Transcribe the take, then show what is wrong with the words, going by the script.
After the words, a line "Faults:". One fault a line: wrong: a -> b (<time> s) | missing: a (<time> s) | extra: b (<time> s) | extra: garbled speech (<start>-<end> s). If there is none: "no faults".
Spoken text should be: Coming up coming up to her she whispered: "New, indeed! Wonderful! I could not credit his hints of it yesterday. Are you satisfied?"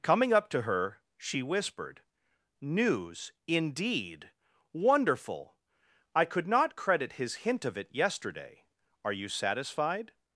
Coming up to her she whispered: "News, indeed! Wonderful! I could not credit his hint of it yesterday. Are you satisfied?"
Faults:
missing: coming up (0.5 s)
wrong: New -> News (2.6 s)
wrong: hints -> hint (7.3 s)